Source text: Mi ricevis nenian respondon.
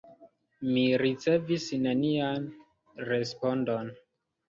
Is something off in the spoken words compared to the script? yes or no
no